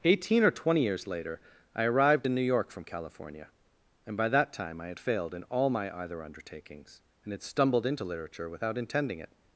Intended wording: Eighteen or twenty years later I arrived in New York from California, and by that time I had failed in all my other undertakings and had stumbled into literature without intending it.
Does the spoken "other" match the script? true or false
false